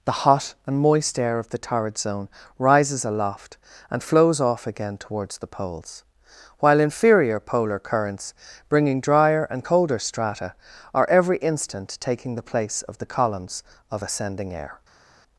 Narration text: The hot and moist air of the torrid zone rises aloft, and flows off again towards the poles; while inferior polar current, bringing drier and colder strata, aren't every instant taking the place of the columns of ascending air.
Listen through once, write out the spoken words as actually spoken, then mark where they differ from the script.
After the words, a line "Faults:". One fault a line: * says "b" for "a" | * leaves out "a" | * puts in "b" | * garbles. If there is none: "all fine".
The hot and moist air of the torrid zone rises aloft, and flows off again towards the poles; while inferior polar currents, bringing drier and colder strata, are every instant taking the place of the columns of ascending air.
Faults:
* says "currents" for "current"
* says "are" for "aren't"